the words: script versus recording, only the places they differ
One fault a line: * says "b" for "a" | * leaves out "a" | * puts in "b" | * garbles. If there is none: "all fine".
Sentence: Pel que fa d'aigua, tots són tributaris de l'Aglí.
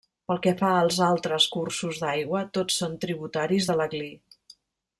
* puts in "als altres cursos"